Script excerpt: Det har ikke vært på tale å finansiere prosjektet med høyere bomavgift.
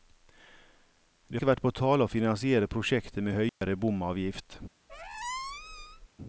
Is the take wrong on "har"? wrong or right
wrong